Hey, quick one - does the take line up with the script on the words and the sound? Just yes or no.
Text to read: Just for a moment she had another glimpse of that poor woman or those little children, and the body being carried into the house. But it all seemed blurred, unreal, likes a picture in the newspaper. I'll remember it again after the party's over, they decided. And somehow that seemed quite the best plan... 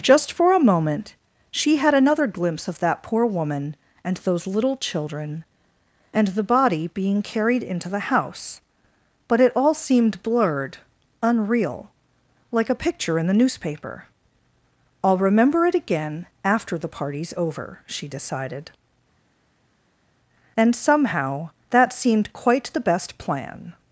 no